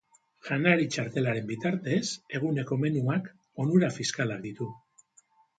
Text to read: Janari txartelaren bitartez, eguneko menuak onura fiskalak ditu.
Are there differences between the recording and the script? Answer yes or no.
no